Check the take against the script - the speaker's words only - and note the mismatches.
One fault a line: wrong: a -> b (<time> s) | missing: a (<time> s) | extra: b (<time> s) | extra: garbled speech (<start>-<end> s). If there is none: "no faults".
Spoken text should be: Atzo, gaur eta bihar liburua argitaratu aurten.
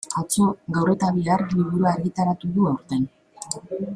extra: du (2.6 s)